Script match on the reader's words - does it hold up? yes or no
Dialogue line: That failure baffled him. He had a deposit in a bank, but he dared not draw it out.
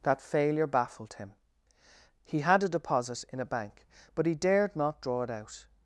yes